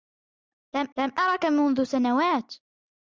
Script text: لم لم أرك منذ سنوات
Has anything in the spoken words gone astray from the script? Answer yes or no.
no